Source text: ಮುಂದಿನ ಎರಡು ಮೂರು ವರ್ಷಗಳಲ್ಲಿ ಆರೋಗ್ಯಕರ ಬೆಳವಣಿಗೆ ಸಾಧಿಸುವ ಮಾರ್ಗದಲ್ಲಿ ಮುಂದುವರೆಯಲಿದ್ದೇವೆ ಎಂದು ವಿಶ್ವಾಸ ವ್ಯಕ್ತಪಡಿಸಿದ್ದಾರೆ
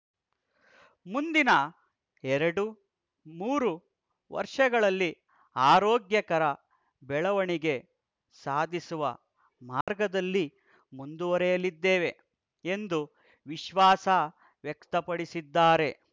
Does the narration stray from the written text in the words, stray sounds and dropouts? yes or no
yes